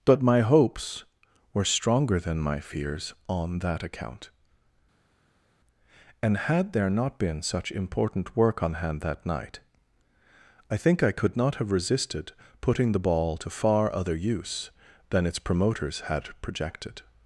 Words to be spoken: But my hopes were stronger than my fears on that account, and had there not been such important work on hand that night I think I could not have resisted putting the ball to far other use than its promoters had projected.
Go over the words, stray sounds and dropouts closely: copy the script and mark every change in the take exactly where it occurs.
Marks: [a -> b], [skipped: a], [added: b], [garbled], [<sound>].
But my hopes were stronger than my fears on that account, and had there not been such important work on hand that night I think I could not have resisted putting the ball to far other use than its promoters had projected.